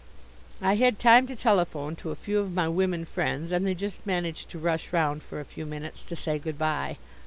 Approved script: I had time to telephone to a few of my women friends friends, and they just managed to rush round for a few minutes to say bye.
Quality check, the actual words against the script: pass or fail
fail